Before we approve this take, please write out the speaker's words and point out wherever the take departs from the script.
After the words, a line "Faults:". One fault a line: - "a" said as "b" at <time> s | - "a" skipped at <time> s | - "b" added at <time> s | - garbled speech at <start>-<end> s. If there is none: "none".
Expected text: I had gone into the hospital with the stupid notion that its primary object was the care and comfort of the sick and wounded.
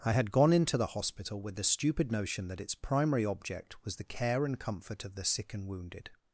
I had gone into the hospital with the stupid notion that its primary object was the care and comfort of the sick and wounded.
Faults:
none